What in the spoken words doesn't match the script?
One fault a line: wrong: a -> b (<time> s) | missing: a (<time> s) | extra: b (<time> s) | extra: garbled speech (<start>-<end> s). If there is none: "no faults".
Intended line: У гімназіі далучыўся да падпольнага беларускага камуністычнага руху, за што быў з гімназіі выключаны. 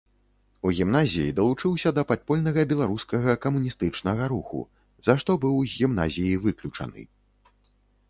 no faults